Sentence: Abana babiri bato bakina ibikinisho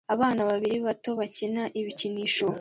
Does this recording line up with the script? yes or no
yes